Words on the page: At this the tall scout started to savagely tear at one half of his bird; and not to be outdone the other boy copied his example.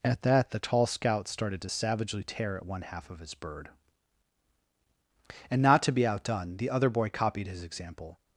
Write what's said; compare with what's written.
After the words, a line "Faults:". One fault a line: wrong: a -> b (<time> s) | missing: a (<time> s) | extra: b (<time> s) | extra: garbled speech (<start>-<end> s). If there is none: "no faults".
At that the tall scout started to savagely tear at one half of his bird; and not to be outdone the other boy copied his example.
Faults:
wrong: this -> that (0.2 s)